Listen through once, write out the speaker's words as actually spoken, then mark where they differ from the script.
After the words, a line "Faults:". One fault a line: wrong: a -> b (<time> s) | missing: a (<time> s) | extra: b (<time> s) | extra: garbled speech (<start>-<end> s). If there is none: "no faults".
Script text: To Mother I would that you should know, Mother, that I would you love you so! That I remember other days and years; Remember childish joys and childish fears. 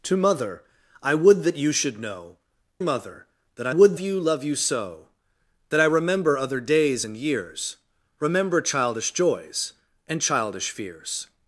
To Mother I would that you should know, Mother, that I would you love you so! That I remember other days and years; Remember childish joys and childish fears.
Faults:
no faults